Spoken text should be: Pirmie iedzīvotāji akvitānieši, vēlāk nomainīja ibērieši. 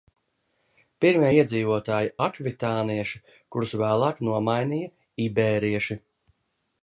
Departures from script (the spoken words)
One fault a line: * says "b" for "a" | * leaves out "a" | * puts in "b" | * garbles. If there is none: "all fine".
* puts in "kurus"